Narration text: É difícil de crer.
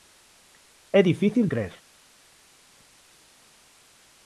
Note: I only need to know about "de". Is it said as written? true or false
false